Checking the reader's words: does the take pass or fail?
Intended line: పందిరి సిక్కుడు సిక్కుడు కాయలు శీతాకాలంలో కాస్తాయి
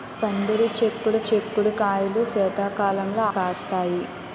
pass